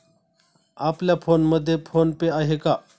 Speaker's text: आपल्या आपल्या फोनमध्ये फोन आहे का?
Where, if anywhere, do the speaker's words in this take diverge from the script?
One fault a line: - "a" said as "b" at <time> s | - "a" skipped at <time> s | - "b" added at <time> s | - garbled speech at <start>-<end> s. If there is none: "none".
- "आपल्या" skipped at 1.1 s
- "पे" added at 2.1 s